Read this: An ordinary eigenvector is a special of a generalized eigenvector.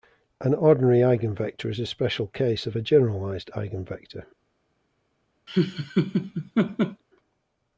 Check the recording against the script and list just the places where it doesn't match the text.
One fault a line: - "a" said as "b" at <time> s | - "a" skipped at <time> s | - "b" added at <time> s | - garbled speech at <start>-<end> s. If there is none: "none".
- "case" added at 2.2 s